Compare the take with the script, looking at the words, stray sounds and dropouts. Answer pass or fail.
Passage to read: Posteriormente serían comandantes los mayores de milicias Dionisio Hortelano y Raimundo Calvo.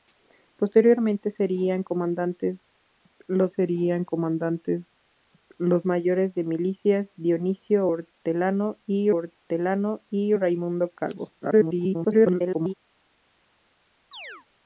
fail